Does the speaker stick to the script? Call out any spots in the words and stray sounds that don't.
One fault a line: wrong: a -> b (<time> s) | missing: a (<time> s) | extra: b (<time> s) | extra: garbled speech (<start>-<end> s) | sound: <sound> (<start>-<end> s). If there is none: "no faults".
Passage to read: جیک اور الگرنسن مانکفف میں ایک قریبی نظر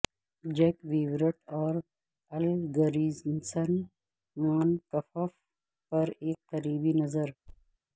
extra: ویورٹ (0.9 s)
wrong: میں -> پر (5.9 s)
sound: thud (7.5-7.8 s)